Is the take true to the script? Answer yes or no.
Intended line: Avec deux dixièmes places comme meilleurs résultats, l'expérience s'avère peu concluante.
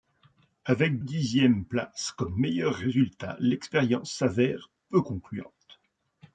no